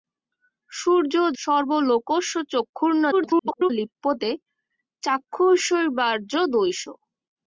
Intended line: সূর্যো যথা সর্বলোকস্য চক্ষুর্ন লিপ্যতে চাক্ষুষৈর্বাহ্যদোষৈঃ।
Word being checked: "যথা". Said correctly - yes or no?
no